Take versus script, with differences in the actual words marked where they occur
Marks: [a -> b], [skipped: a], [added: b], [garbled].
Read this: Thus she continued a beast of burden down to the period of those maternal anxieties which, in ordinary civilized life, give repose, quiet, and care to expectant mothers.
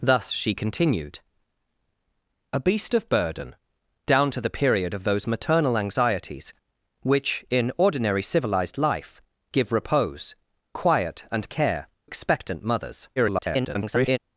Thus she continued a beast of burden down to the period of those maternal anxieties which, in ordinary civilized life, give repose, quiet, and care [skipped: to] expectant mothers. [garbled]